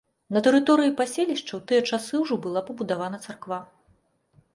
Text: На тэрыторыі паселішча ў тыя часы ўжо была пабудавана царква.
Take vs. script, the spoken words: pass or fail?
pass